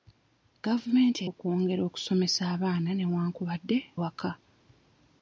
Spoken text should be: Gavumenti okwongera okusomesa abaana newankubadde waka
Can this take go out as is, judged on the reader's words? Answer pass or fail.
pass